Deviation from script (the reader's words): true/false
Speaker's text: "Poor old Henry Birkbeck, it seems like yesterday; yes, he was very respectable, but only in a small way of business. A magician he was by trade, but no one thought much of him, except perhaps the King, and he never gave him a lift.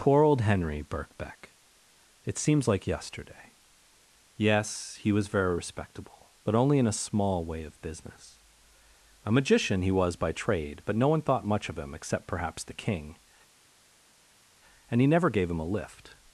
false